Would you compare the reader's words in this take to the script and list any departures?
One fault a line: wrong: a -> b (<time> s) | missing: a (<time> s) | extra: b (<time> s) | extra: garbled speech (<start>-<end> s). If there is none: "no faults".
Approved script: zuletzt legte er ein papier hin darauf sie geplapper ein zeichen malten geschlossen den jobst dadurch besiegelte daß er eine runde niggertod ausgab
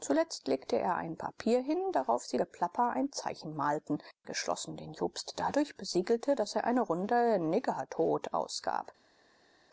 no faults